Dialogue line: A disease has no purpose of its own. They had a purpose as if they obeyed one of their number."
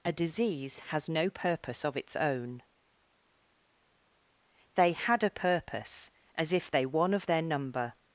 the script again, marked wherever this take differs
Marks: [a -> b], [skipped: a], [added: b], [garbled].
A disease has no purpose of its own. They had a purpose as if they [skipped: obeyed] one of their number."